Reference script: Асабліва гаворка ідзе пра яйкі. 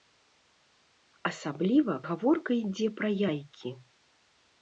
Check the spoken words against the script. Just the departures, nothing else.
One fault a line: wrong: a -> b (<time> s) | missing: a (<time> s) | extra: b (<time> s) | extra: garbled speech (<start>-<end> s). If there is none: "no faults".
no faults